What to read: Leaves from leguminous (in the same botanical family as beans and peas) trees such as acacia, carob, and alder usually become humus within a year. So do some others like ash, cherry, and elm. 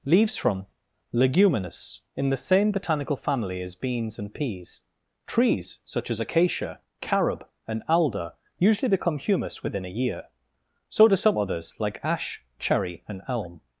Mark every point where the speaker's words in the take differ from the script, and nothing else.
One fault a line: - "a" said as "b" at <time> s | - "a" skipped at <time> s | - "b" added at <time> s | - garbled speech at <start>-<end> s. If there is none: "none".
none